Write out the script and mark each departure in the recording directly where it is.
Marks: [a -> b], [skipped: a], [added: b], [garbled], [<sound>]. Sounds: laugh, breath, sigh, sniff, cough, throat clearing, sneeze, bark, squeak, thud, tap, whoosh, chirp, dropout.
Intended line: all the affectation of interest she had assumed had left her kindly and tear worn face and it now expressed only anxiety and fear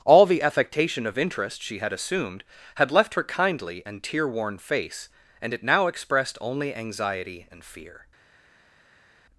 all the affectation of interest she had assumed had left her kindly and tear worn face and it now expressed only anxiety and fear